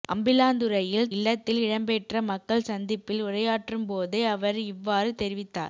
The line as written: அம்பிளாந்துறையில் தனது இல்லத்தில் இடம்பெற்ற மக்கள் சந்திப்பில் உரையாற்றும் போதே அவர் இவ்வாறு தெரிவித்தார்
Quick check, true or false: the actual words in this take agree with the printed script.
false